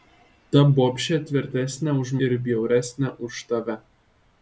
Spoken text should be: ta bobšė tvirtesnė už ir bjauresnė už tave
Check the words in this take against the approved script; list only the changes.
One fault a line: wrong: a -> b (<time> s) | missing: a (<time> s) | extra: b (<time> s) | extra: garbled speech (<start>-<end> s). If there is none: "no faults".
no faults